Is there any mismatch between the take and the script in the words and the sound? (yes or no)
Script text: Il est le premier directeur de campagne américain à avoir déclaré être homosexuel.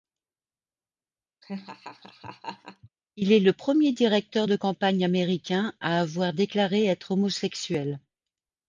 yes